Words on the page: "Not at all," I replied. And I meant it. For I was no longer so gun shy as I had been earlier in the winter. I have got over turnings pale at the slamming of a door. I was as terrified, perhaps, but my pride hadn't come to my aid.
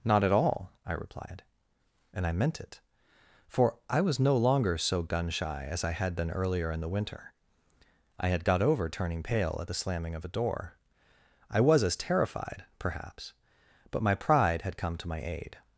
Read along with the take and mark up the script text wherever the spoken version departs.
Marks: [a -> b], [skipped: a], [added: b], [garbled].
"Not at all," I replied. And I meant it. For I was no longer so gun shy as I had been earlier in the winter. I [have -> had] got over [turnings -> turning] pale at the slamming of a door. I was as terrified, perhaps, but my pride [hadn't -> had] come to my aid.